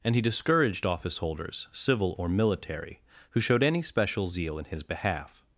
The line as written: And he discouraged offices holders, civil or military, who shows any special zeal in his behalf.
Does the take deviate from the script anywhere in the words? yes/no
yes